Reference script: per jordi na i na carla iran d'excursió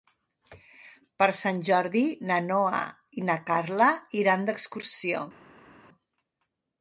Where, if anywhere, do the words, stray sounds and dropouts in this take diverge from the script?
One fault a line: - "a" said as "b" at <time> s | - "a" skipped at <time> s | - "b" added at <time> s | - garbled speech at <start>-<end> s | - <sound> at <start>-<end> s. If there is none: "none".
- "sant" added at 1.4 s
- "noa" added at 2.5 s